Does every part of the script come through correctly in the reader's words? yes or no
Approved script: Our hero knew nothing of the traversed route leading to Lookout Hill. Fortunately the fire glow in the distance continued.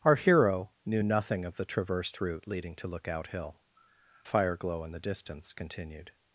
no